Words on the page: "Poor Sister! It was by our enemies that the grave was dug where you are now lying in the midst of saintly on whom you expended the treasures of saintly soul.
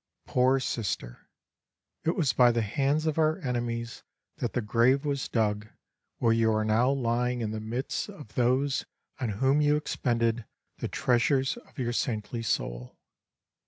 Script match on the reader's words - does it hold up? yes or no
no